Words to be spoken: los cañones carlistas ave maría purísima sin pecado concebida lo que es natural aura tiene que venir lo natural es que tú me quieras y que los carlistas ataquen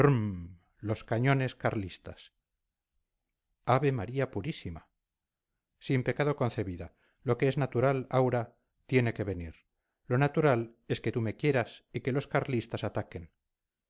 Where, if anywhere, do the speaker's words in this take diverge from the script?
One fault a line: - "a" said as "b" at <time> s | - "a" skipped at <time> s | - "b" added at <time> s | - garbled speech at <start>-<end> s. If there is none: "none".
none